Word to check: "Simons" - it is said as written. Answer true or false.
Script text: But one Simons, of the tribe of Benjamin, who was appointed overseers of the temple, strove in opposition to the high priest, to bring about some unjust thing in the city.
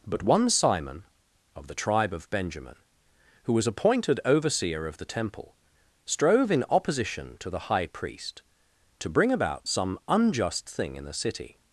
false